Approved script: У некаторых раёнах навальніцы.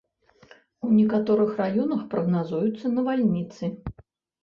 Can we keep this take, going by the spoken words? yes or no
no